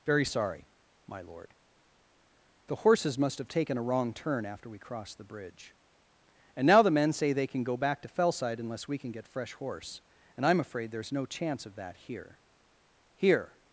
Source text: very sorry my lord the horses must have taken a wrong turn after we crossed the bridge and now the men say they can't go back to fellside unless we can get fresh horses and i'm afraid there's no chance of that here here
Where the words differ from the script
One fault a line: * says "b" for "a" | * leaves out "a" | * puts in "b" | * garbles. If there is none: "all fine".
* says "can" for "can't"
* says "horse" for "horses"